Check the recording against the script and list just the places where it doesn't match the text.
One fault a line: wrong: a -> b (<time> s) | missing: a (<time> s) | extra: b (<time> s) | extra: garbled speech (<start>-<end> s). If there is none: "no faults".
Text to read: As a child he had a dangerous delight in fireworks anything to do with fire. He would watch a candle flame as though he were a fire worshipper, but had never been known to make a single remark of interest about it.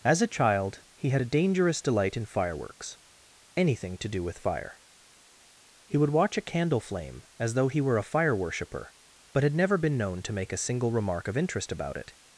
no faults